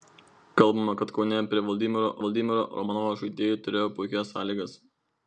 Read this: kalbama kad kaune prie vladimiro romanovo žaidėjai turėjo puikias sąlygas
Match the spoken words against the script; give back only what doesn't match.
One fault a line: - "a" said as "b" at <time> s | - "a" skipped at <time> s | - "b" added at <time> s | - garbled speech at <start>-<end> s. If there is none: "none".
- "vladimiro" added at 2.2 s